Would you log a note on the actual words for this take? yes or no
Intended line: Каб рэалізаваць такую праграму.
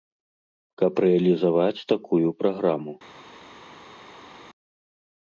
no